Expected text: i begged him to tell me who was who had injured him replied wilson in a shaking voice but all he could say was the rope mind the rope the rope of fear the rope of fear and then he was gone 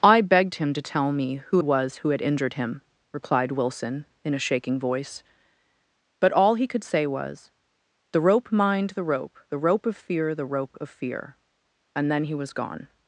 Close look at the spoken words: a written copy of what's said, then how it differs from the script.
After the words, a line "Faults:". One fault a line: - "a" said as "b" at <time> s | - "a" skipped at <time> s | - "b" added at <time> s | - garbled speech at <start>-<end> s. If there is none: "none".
i begged him to tell me who was who had injured him replied wilson in a shaking voice but all he could say was the rope mind the rope the rope of fear the rope of fear and then he was gone
Faults:
none